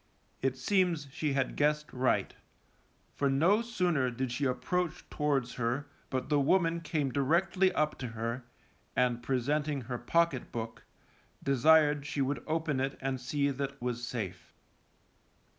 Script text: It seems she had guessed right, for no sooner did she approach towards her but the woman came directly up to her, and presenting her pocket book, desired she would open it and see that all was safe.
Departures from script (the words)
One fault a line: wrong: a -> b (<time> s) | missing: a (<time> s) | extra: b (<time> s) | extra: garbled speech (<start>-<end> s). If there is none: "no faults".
missing: all (13.8 s)